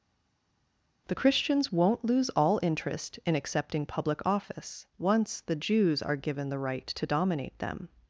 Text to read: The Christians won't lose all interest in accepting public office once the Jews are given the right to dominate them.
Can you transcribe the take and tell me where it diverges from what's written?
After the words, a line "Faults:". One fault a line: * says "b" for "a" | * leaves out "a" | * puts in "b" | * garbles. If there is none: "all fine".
The Christians won't lose all interest in accepting public office once the Jews are given the right to dominate them.
Faults:
all fine